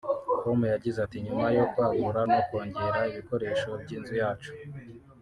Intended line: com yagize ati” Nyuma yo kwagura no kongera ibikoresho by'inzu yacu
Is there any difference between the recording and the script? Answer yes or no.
no